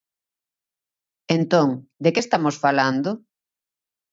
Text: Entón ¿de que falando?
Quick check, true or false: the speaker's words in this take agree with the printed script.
false